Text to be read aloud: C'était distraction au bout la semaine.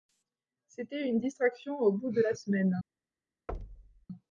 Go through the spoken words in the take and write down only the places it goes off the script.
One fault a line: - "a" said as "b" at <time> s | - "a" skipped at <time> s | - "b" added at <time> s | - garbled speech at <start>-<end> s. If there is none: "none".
- "une" added at 1.1 s
- "de" added at 2.1 s